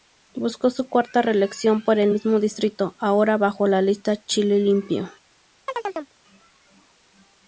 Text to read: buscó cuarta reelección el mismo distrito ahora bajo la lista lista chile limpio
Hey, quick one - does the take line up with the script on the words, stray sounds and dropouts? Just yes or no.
no